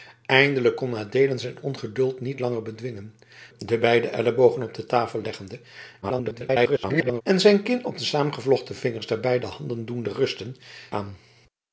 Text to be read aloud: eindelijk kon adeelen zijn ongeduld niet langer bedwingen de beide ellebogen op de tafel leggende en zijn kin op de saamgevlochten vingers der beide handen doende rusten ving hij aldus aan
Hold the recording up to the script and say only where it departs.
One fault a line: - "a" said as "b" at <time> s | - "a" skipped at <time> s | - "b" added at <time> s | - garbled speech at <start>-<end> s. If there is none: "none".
- garbled speech at 6.0-7.2 s
- "ving hij aldus" skipped at 10.6 s